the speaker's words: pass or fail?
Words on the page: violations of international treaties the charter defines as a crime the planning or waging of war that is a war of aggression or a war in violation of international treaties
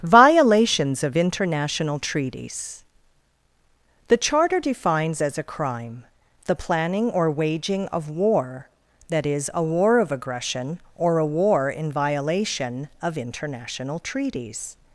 pass